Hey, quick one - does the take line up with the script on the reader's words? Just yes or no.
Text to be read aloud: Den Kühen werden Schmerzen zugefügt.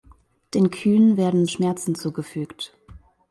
yes